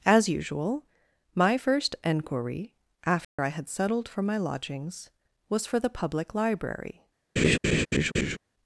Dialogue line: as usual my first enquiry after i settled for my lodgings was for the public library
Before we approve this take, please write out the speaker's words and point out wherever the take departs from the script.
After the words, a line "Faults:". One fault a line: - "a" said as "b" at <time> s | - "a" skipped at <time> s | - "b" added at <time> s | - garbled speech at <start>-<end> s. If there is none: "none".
as usual my first enquiry after i had settled for my lodgings was for the public library
Faults:
- "had" added at 3.5 s